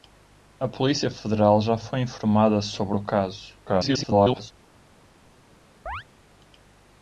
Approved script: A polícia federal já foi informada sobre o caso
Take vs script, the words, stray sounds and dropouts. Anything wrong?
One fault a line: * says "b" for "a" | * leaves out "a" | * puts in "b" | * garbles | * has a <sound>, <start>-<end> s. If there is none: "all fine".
* garbles
* has a chirp, 5.9-6.0 s